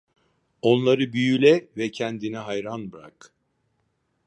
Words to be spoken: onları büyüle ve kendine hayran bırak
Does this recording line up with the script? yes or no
yes